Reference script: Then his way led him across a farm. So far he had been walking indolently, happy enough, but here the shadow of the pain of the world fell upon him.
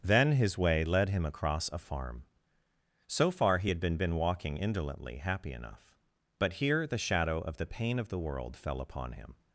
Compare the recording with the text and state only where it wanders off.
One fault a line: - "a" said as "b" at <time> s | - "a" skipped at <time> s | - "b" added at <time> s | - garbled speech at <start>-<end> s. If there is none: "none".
- "been" added at 4.0 s